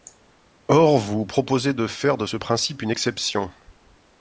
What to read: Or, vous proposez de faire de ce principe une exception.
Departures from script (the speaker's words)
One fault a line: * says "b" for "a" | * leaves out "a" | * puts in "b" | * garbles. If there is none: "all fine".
all fine